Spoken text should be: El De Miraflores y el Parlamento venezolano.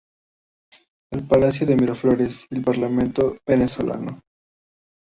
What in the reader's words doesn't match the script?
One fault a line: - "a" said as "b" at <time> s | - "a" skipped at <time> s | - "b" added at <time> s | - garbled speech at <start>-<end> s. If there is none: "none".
- "Palacio" added at 1.3 s